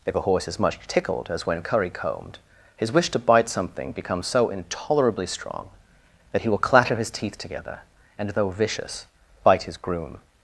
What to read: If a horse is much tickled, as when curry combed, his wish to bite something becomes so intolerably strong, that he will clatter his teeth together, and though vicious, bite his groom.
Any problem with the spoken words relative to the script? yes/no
no